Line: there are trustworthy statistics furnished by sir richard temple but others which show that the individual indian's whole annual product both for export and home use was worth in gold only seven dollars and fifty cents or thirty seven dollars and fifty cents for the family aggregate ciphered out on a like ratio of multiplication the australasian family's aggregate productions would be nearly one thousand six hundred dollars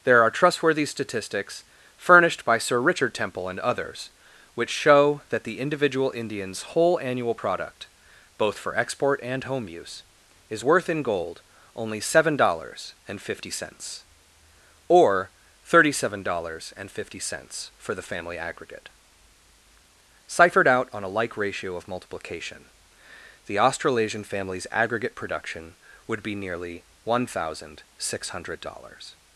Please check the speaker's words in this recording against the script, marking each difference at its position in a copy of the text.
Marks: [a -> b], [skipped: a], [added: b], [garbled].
there are trustworthy statistics furnished by sir richard temple [but -> and] others which show that the individual indian's whole annual product both for export and home use [was -> is] worth in gold only seven dollars and fifty cents or thirty seven dollars and fifty cents for the family aggregate ciphered out on a like ratio of multiplication the australasian family's aggregate [productions -> production] would be nearly one thousand six hundred dollars